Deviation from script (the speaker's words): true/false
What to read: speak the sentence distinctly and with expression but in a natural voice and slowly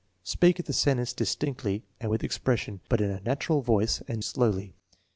false